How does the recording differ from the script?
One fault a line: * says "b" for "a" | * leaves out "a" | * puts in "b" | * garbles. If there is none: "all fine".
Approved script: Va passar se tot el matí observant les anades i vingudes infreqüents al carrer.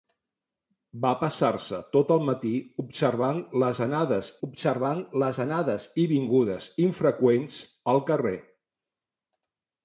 * puts in "observant les anades"